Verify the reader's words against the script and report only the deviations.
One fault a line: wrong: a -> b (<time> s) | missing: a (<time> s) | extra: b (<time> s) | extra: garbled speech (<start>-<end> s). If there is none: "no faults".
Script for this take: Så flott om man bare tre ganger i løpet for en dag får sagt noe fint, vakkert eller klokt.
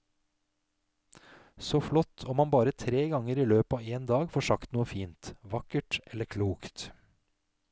wrong: for -> av (3.8 s)